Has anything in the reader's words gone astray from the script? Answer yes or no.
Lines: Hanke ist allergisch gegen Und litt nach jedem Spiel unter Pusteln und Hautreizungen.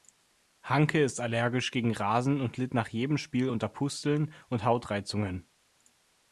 yes